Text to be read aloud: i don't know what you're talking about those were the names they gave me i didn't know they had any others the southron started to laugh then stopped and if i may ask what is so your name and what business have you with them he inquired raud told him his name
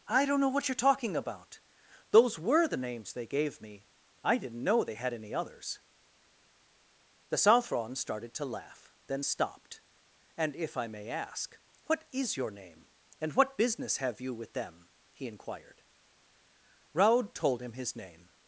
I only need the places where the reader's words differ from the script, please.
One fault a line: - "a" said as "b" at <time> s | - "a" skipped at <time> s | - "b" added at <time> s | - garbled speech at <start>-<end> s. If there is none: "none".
- "so" skipped at 12.4 s